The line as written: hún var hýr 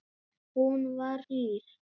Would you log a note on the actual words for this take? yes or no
no